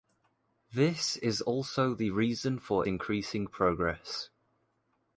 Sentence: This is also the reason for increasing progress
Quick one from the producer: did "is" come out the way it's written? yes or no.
yes